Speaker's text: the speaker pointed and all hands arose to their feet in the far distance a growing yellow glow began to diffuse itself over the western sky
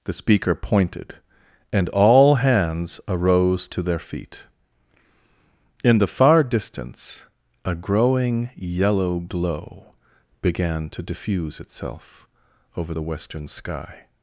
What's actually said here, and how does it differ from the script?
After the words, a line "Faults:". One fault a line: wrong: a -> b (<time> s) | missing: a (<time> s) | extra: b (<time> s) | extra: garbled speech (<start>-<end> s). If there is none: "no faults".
the speaker pointed and all hands arose to their feet in the far distance a growing yellow glow began to diffuse itself over the western sky
Faults:
no faults